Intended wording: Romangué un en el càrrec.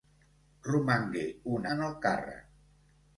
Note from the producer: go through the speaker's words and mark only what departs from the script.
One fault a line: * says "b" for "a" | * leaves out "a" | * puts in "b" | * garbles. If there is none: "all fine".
all fine